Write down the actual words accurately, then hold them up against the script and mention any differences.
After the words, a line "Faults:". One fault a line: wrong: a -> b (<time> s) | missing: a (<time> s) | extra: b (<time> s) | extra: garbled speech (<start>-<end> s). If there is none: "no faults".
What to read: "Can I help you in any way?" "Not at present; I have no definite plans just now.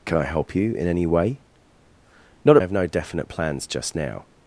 "Can I help you in any way?" "Not have no definite plans just now.
Faults:
missing: at present I (2.6 s)